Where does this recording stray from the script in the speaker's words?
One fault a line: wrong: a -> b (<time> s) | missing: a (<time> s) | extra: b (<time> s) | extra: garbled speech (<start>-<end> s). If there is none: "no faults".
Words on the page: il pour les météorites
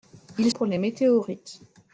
no faults